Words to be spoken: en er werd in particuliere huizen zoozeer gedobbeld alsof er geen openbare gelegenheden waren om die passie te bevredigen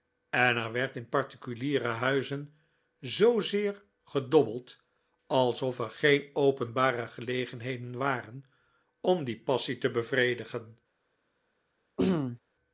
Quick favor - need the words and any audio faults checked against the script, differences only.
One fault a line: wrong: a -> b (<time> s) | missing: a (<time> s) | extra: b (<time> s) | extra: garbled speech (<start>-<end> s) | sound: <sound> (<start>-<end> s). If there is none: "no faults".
sound: throat clearing (12.0-12.4 s)